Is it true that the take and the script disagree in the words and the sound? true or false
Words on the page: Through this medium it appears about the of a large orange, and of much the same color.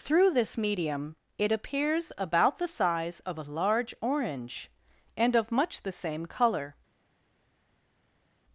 true